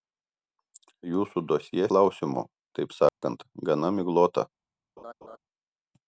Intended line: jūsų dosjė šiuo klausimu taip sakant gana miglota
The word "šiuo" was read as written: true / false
false